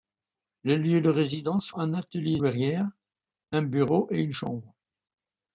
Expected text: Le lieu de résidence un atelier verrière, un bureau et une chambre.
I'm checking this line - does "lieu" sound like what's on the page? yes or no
yes